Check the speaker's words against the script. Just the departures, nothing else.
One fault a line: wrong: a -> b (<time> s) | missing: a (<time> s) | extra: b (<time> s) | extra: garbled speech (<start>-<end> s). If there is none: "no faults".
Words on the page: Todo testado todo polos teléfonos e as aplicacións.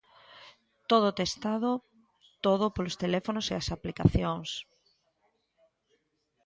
no faults